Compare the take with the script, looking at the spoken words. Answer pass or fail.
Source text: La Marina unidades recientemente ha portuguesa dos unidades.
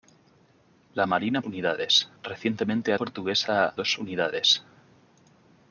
pass